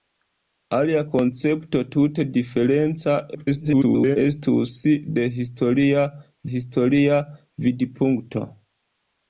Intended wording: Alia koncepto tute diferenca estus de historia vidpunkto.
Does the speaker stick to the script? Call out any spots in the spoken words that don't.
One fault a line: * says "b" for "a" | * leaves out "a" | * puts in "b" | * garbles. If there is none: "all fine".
* garbles
* puts in "historia"